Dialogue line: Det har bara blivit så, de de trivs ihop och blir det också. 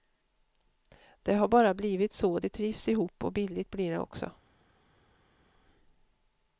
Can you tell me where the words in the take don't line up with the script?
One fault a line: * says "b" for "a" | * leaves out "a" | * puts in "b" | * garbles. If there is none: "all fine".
* leaves out "de"
* puts in "billigt"